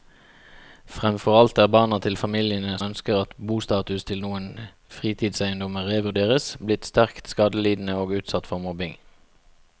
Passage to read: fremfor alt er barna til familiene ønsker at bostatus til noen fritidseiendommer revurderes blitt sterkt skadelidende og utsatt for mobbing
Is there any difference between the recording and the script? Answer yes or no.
no